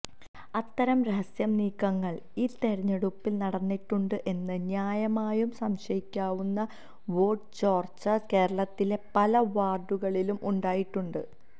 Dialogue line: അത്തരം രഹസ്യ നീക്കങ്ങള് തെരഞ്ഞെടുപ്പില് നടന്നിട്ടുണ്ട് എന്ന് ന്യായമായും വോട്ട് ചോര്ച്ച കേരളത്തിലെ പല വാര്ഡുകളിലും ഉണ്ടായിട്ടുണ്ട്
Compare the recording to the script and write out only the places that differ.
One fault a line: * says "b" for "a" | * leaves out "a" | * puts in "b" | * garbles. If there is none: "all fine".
* puts in "ഈ"
* puts in "സംശയിക്കാവുന്ന"